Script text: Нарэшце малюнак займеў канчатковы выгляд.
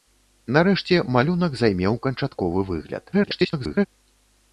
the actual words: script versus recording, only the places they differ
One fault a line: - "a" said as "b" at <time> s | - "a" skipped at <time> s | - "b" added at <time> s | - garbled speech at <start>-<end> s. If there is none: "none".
- garbled speech at 3.1-3.9 s